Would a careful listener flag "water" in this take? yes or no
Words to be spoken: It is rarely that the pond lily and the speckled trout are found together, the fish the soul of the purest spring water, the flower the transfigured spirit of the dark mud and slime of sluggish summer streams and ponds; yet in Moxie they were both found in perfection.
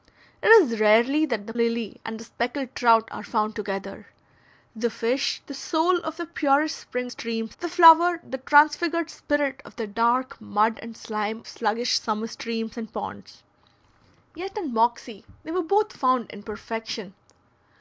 yes